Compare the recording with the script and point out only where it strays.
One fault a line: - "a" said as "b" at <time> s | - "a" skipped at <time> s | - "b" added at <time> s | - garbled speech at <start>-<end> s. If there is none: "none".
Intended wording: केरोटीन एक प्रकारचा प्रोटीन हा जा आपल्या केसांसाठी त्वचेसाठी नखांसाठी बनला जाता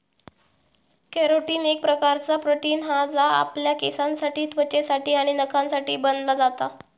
- "आणि" added at 5.1 s